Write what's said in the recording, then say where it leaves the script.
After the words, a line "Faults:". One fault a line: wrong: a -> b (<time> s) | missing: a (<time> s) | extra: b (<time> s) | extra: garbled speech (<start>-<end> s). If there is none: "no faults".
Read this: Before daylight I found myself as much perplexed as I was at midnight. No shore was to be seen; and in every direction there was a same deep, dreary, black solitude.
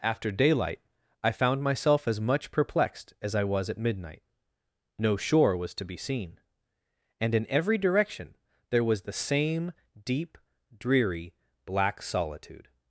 After daylight I found myself as much perplexed as I was at midnight. No shore was to be seen; and in every direction there was the same deep, dreary, black solitude.
Faults:
wrong: Before -> After (0.0 s)
wrong: a -> the (9.0 s)